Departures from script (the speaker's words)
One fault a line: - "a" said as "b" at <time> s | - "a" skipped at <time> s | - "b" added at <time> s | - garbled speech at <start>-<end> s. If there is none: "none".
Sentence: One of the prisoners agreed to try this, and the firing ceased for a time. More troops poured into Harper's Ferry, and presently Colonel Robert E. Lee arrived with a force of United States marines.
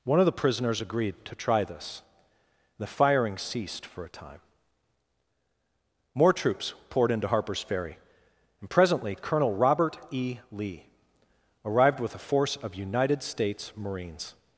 - "and" skipped at 2.0 s